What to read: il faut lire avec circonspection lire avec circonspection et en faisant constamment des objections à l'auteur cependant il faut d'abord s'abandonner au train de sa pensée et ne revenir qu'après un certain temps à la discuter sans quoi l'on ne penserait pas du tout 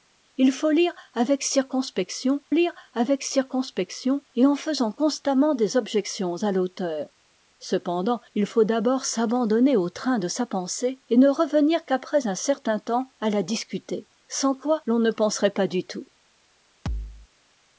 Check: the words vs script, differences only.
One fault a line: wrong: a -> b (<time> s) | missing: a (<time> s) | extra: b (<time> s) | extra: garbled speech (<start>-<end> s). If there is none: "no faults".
no faults